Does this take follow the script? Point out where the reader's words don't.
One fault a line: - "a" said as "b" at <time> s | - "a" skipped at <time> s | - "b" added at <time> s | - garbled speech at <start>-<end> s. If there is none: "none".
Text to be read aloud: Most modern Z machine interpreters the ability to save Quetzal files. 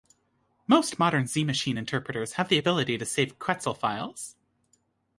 - "have" added at 2.3 s